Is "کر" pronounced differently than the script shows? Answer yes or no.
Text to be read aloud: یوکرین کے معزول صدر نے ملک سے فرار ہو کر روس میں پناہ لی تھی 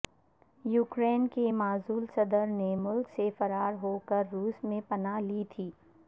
no